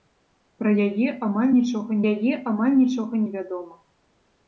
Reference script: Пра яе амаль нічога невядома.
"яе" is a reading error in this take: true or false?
false